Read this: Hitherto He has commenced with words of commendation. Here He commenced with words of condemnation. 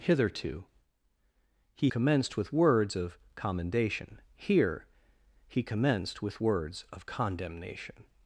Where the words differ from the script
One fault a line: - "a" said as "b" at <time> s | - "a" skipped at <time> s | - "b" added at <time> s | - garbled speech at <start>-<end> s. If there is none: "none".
- "has" skipped at 1.9 s